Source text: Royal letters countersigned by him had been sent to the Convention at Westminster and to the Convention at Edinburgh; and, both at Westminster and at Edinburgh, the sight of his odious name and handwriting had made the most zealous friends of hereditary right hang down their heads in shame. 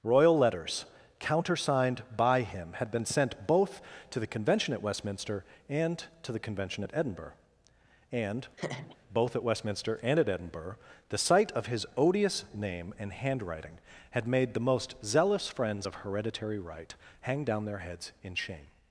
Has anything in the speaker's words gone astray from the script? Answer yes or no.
yes